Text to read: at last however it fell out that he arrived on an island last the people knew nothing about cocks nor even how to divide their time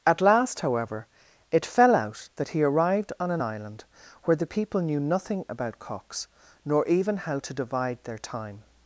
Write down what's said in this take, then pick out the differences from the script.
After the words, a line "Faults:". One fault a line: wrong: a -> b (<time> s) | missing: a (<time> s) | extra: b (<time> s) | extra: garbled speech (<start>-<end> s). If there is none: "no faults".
at last however it fell out that he arrived on an island where the people knew nothing about cocks nor even how to divide their time
Faults:
wrong: last -> where (4.2 s)